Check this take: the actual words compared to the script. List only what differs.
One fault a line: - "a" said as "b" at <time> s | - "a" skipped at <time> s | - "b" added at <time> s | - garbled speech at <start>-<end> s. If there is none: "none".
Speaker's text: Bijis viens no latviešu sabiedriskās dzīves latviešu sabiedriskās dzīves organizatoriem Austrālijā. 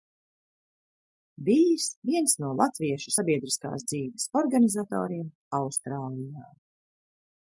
- "latviešu sabiedriskās dzīves" skipped at 4.3 s